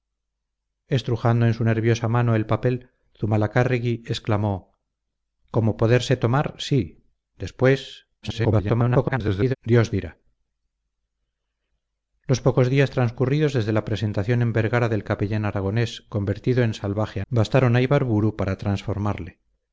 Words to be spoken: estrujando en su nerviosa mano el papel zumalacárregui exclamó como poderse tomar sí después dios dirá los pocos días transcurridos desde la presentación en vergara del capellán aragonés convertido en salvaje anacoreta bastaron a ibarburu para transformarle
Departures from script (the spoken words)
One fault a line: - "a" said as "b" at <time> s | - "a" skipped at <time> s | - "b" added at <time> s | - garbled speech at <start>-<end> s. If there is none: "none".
- garbled speech at 8.2-9.5 s
- "anacoreta" skipped at 17.2 s